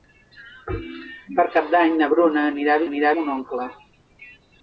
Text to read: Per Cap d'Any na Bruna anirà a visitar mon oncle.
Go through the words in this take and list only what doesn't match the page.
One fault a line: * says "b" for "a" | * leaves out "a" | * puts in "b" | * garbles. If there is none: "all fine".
* says "anirà" for "visitar"